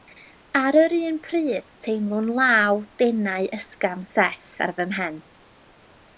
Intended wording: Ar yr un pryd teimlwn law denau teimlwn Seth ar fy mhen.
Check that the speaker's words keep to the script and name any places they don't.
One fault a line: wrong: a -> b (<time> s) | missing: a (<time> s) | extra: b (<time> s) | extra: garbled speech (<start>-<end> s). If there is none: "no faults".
wrong: teimlwn -> ysgafn (3.6 s)